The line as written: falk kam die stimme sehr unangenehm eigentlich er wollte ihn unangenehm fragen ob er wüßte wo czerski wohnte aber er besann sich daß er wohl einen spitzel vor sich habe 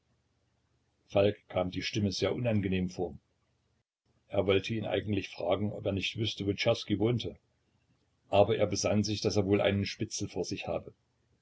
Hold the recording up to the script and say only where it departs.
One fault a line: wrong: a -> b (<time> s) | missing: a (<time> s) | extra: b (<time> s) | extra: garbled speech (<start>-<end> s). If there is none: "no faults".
wrong: eigentlich -> vor (2.9 s)
wrong: unangenehm -> eigentlich (4.9 s)
extra: nicht (5.9 s)